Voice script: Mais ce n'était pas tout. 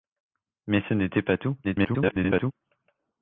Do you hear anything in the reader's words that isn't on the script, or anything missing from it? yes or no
yes